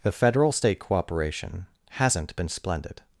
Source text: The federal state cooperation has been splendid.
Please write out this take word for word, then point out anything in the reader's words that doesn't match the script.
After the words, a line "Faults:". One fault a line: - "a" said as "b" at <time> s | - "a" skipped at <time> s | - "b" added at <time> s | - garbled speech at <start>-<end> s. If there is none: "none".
The federal state cooperation hasn't been splendid.
Faults:
- "has" said as "hasn't" at 1.9 s